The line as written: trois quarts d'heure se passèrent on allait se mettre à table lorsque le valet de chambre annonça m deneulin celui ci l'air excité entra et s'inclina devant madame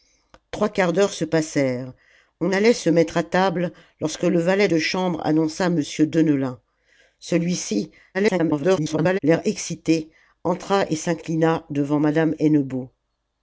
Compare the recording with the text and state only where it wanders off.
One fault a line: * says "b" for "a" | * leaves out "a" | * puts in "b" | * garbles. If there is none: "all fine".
* garbles